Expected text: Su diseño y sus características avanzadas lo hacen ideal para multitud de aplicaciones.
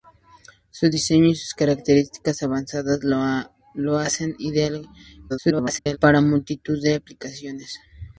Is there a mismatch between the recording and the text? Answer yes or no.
yes